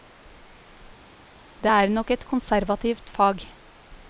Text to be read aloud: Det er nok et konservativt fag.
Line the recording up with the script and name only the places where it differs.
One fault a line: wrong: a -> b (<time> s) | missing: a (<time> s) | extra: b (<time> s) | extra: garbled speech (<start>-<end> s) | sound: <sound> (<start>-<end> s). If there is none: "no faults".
no faults